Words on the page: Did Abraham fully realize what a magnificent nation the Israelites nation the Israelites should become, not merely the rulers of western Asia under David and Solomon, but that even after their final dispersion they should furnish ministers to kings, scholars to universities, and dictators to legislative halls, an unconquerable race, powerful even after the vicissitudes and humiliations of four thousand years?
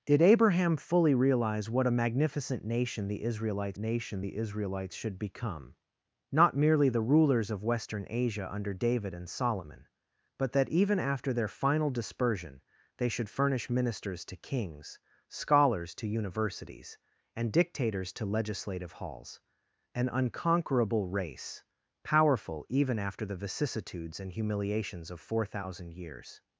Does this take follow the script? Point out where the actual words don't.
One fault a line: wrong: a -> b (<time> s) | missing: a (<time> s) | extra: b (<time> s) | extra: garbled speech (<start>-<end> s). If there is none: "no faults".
no faults